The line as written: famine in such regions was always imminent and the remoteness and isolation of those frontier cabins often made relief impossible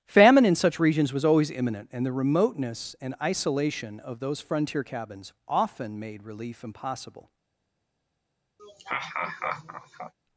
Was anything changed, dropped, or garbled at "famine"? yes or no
no